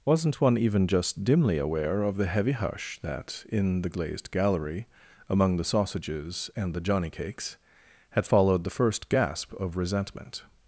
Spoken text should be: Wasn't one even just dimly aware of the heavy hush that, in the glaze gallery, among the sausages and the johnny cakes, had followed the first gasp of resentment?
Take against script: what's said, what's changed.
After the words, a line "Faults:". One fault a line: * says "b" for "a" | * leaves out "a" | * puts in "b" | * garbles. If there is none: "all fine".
Wasn't one even just dimly aware of the heavy hush that, in the glazed gallery, among the sausages and the johnny cakes, had followed the first gasp of resentment?
Faults:
* says "glazed" for "glaze"